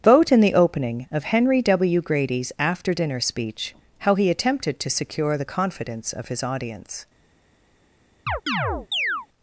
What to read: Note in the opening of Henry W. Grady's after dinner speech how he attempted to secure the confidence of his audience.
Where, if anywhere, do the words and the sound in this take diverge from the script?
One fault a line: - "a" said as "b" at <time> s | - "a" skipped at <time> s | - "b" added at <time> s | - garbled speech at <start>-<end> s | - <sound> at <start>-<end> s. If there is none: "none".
- "Note" said as "Vote" at 0.0 s
- chirp at 8.3-9.3 s